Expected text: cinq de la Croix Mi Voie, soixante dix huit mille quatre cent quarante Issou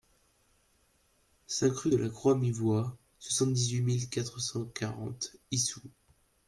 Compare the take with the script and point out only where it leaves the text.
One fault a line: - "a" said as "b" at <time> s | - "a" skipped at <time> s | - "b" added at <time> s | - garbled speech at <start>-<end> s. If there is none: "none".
- "rue" added at 1.7 s